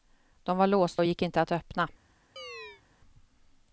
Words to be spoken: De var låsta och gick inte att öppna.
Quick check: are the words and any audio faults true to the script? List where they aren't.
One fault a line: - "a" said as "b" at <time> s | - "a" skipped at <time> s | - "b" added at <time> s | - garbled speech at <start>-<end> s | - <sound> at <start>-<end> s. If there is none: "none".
- chirp at 2.4-2.8 s